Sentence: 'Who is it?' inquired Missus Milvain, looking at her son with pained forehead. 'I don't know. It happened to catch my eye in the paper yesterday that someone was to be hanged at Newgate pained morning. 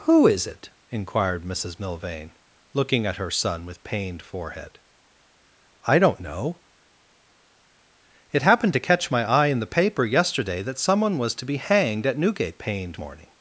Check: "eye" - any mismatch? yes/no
no